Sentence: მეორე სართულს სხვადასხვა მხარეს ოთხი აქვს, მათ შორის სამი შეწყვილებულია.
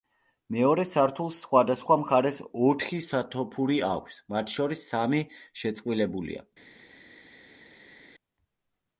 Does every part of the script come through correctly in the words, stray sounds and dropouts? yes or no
no